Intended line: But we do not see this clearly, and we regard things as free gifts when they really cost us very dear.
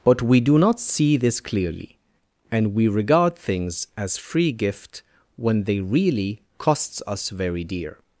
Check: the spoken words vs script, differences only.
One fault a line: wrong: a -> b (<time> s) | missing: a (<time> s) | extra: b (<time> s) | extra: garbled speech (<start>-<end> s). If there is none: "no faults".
wrong: gifts -> gift (4.5 s)
wrong: cost -> costs (6.6 s)